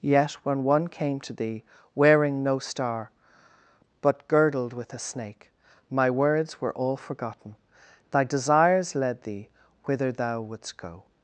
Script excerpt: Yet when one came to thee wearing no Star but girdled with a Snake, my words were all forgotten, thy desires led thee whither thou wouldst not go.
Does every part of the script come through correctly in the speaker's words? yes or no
no